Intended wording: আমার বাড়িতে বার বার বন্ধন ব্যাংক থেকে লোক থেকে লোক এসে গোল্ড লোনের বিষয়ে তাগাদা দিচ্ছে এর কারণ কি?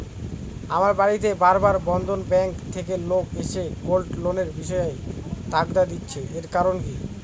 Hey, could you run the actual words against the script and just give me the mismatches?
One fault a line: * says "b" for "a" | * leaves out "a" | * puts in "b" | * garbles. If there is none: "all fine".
* leaves out "থেকে লোক"